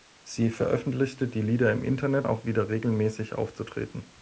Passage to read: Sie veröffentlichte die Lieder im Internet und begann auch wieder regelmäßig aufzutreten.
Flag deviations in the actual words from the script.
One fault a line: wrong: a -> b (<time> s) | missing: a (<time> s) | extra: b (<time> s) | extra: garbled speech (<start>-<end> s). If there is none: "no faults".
missing: und begann (2.3 s)